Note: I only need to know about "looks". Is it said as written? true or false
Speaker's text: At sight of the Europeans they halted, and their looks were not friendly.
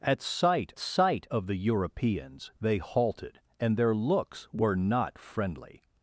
true